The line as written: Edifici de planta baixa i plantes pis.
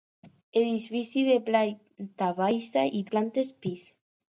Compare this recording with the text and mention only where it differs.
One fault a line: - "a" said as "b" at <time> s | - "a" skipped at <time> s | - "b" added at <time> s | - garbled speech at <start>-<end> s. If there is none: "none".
none